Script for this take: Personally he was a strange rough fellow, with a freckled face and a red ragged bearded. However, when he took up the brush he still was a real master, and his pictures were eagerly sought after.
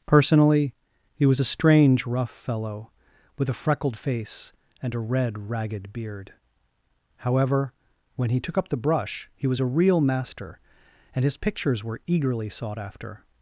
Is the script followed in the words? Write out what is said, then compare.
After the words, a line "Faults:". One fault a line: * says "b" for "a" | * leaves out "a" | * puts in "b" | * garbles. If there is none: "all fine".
Personally he was a strange rough fellow, with a freckled face and a red ragged beard. However, when he took up the brush he was a real master, and his pictures were eagerly sought after.
Faults:
* says "beard" for "bearded"
* leaves out "still"